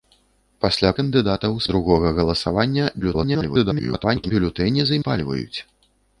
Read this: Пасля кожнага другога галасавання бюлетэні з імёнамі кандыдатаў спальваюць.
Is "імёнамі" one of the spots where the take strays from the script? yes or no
yes